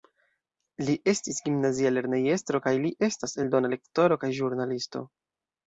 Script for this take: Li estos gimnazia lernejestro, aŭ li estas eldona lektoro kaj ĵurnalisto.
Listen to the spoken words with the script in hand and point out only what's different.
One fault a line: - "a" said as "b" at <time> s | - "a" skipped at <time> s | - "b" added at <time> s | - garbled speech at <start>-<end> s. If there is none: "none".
- "estos" said as "estis" at 1.1 s
- "aŭ" said as "kaj" at 2.6 s